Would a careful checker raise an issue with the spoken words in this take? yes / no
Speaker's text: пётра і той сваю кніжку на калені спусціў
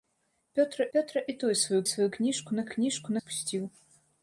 yes